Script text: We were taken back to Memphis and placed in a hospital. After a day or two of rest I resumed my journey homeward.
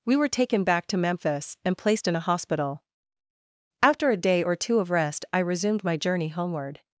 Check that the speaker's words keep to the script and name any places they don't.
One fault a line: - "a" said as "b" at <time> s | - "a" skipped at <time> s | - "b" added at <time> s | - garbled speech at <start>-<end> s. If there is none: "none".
none